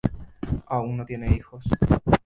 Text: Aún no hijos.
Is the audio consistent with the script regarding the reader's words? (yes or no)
no